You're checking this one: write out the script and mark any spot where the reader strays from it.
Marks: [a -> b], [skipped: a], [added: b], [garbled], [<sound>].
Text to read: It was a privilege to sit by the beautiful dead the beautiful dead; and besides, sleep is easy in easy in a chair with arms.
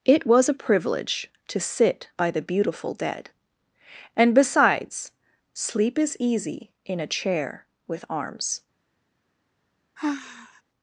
It was a privilege to sit by the beautiful dead [skipped: the beautiful dead;] and besides, sleep is easy in [skipped: easy in] a chair with arms. [sigh]